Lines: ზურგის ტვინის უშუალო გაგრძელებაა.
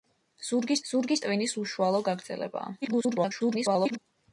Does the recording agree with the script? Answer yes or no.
no